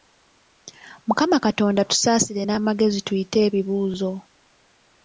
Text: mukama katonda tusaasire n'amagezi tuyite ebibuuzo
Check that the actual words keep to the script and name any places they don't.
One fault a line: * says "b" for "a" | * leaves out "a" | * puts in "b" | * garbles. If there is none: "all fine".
all fine